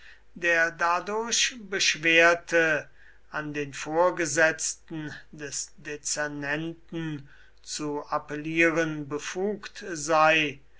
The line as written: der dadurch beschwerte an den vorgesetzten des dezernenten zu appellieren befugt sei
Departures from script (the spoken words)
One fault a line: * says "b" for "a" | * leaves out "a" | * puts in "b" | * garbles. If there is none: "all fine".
all fine